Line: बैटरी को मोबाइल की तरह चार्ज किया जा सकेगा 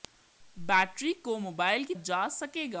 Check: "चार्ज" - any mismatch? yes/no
yes